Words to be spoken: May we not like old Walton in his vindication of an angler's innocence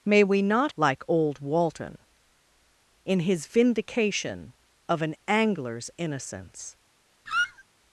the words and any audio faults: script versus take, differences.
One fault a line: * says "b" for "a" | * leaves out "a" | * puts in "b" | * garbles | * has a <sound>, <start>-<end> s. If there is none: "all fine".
* has a squeak, 7.3-7.6 s